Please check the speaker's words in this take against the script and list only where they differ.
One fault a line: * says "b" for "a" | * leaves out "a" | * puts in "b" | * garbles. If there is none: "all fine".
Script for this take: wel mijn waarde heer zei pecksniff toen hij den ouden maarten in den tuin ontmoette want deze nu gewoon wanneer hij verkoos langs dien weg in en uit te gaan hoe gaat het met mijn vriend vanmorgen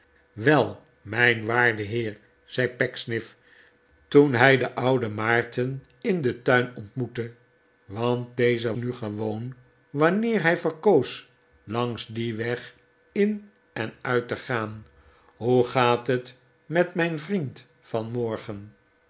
all fine